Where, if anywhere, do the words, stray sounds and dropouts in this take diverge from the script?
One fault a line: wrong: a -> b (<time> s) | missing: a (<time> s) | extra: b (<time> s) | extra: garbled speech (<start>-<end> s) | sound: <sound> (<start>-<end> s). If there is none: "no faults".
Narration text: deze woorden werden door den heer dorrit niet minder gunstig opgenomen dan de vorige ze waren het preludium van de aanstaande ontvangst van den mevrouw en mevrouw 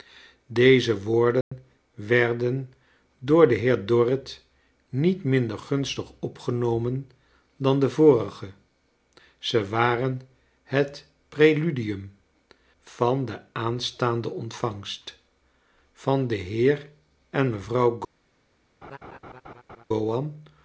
sound: dropout (1.4-1.5 s)
wrong: mevrouw -> heer (16.4 s)
sound: laugh (18.8-19.8 s)